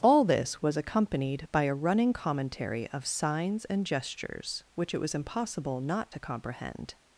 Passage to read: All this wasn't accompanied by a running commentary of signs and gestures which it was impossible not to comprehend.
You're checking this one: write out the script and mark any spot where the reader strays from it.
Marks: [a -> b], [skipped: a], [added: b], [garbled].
All this [wasn't -> was] accompanied by a running commentary of signs and gestures which it was impossible not to comprehend.